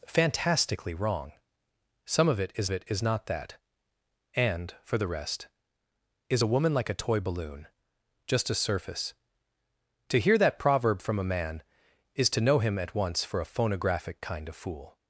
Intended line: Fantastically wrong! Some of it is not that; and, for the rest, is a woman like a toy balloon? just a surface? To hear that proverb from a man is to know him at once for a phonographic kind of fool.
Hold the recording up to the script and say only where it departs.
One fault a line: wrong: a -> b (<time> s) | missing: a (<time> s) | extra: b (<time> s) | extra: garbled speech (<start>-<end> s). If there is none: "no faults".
extra: it is (2.7 s)